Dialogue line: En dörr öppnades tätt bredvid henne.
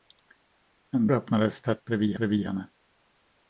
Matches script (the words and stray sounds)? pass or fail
fail